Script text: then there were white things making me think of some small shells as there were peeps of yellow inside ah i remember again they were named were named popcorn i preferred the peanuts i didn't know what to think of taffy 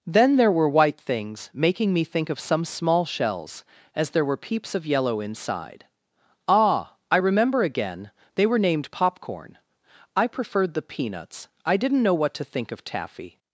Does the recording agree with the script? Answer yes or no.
no